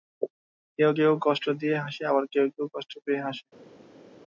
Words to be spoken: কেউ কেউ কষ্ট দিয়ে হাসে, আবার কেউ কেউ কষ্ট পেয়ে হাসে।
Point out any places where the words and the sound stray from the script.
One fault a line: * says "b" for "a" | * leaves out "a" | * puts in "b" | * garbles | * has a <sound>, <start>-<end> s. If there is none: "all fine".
all fine